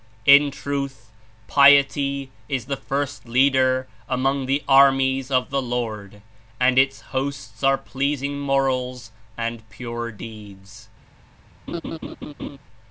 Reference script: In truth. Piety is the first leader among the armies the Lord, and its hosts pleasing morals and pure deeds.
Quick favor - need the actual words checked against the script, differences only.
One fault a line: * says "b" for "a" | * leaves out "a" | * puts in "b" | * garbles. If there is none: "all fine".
* puts in "of"
* puts in "are"